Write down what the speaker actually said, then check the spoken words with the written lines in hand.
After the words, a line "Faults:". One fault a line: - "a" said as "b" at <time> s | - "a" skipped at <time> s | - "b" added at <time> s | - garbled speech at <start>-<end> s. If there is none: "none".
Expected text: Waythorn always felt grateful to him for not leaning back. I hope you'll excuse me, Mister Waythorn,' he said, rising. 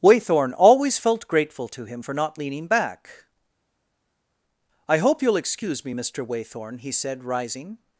Waythorn always felt grateful to him for not leaning back. I hope you'll excuse me, Mister Waythorn,' he said, rising.
Faults:
none